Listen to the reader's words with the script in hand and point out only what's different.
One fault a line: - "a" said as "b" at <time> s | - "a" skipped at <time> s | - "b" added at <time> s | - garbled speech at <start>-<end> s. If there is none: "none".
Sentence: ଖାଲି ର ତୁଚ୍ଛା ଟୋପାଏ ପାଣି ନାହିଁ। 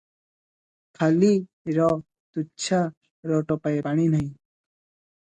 - "ର" added at 3.2 s